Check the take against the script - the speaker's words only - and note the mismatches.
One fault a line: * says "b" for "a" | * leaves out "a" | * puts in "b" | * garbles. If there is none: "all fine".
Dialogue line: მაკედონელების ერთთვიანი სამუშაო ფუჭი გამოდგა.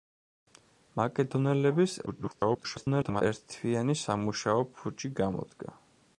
* garbles